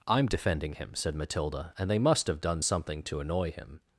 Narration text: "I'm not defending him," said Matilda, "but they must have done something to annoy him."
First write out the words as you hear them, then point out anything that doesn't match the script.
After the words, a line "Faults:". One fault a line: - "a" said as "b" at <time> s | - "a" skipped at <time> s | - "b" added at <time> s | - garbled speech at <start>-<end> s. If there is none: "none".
"I'm defending him," said Matilda, "and they must have done something to annoy him."
Faults:
- "not" skipped at 0.2 s
- "but" said as "and" at 1.8 s